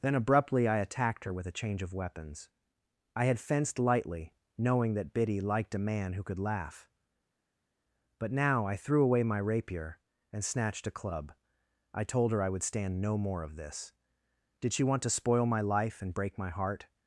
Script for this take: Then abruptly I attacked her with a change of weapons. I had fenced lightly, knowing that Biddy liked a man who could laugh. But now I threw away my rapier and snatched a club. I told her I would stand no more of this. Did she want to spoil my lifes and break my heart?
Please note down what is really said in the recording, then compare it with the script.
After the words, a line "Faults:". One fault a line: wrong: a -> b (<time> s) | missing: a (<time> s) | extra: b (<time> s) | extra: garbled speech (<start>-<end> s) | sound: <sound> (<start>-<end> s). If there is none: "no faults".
Then abruptly I attacked her with a change of weapons. I had fenced lightly, knowing that Biddy liked a man who could laugh. But now I threw away my rapier and snatched a club. I told her I would stand no more of this. Did she want to spoil my life and break my heart?
Faults:
wrong: lifes -> life (15.6 s)